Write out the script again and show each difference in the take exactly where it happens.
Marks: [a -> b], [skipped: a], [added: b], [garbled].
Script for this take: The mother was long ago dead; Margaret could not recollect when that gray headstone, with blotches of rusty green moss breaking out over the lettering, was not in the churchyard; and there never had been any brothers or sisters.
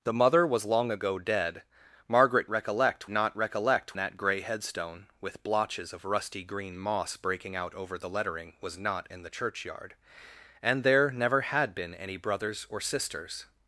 The mother was long ago dead; Margaret [could -> recollect] not recollect [skipped: when] that gray headstone, with blotches of rusty green moss breaking out over the lettering, was not in the churchyard; and there never had been any brothers or sisters.